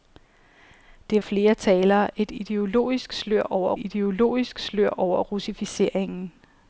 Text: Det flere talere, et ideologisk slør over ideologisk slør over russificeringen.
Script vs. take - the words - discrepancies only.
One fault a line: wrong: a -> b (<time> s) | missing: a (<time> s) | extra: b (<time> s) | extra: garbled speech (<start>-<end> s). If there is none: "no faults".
no faults